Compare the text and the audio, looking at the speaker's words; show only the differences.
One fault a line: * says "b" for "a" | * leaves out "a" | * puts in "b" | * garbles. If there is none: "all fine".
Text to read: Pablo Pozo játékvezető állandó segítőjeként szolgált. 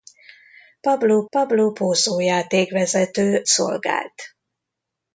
* puts in "pablo"
* leaves out "állandó segítőjeként"